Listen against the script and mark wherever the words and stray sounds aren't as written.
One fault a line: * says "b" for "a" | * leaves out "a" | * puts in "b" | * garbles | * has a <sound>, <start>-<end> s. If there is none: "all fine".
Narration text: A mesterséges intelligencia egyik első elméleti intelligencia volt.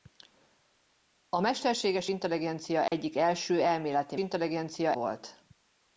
* has a dropout, 2.9-2.9 s